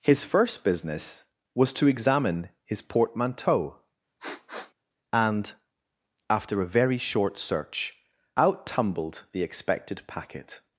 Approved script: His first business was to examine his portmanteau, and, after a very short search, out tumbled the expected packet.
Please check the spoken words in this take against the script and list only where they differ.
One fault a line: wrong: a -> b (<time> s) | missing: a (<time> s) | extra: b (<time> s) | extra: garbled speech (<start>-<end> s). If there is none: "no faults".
no faults